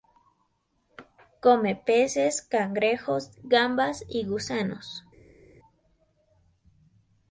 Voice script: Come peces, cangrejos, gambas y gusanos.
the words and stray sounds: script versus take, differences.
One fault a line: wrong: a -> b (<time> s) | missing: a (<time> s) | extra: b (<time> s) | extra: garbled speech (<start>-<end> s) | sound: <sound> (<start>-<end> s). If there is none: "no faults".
no faults